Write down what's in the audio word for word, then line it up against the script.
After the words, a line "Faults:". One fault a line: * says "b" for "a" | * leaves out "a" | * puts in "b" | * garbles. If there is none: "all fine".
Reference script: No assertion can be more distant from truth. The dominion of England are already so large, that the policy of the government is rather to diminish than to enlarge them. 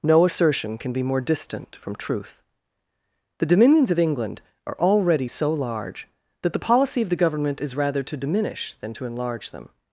No assertion can be more distant from truth. The dominions of England are already so large, that the policy of the government is rather to diminish than to enlarge them.
Faults:
* says "dominions" for "dominion"